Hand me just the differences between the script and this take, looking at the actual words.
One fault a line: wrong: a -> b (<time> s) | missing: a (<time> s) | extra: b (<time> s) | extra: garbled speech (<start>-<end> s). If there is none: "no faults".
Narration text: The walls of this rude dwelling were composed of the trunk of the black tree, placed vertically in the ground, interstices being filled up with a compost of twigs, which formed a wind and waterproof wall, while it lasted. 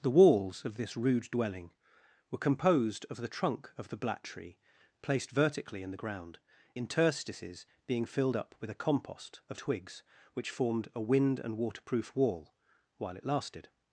no faults